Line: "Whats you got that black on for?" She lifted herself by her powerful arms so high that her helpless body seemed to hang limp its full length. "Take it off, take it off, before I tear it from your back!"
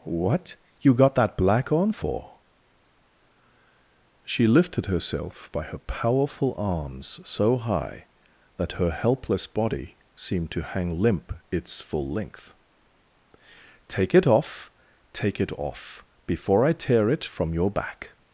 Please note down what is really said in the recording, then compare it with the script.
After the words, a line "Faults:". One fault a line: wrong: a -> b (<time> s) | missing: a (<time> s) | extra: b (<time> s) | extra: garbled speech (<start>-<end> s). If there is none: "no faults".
"What you got that black on for?" She lifted herself by her powerful arms so high that her helpless body seemed to hang limp its full length. "Take it off, take it off, before I tear it from your back!"
Faults:
wrong: Whats -> What (0.0 s)